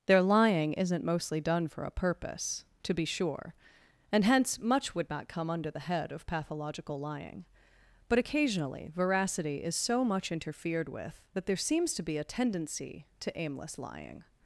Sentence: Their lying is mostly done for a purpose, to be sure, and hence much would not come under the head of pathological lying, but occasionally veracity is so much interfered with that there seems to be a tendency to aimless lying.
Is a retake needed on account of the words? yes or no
yes